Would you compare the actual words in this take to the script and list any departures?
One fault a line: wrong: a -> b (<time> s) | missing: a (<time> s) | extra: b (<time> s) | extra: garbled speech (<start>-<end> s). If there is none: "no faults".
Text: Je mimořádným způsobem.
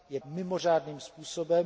no faults